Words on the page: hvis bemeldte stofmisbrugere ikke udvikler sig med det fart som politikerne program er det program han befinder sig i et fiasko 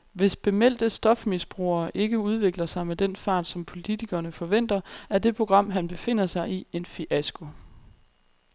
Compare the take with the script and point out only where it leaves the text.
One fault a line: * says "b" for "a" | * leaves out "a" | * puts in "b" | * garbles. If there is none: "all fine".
* says "den" for "det"
* says "forventer" for "program"
* says "en" for "et"